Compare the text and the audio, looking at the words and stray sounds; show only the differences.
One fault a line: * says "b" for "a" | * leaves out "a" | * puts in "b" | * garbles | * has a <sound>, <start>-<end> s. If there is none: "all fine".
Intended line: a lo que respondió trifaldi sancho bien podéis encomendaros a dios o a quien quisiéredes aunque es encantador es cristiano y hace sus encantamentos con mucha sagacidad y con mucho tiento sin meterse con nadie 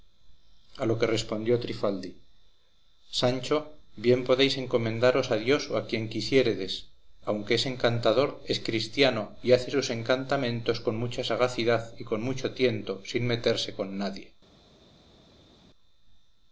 all fine